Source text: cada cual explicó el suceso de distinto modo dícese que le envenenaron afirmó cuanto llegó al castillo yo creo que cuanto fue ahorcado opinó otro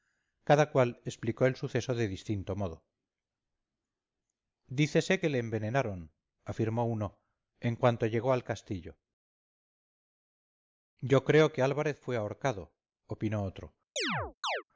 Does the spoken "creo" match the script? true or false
true